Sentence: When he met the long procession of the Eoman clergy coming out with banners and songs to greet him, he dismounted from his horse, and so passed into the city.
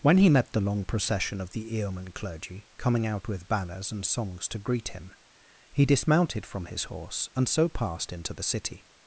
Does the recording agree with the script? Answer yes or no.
yes